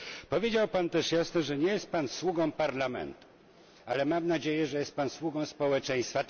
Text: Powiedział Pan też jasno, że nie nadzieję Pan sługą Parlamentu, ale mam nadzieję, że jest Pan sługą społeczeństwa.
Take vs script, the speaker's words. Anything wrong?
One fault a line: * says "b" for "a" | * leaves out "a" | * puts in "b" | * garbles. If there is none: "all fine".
* says "jest" for "nadzieję"